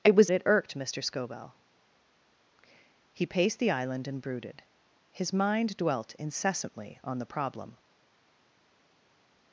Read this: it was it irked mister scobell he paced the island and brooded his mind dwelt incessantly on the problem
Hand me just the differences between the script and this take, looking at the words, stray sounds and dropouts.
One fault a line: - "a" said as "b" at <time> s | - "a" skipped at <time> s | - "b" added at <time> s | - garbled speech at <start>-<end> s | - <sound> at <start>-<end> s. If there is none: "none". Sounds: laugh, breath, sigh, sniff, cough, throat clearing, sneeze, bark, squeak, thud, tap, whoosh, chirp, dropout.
none